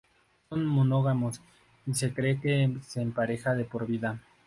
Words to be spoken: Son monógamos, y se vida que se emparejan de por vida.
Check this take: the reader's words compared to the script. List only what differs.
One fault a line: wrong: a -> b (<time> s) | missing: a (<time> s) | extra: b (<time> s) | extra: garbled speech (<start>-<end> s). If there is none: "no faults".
wrong: vida -> cree (2.1 s)